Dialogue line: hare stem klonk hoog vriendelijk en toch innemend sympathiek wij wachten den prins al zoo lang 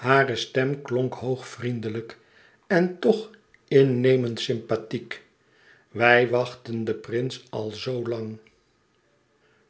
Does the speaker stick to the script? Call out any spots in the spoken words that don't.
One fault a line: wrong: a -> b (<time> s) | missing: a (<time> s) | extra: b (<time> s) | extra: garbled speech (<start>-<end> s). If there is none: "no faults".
no faults